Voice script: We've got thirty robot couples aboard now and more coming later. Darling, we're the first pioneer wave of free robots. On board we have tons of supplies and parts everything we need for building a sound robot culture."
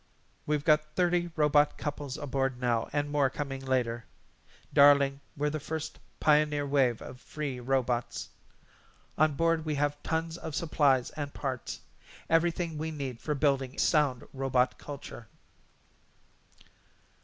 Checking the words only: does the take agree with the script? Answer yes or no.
no